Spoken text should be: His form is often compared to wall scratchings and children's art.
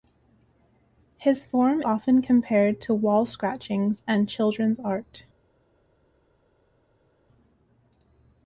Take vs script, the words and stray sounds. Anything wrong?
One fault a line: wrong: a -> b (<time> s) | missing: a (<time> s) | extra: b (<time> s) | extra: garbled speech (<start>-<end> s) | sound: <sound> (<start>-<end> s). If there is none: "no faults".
missing: is (1.8 s)